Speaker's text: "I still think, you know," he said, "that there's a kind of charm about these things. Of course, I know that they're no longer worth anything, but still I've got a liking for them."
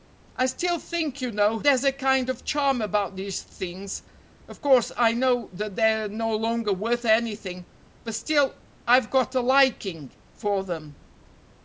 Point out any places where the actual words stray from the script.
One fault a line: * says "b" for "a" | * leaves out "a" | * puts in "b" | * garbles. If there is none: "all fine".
* leaves out "he said that"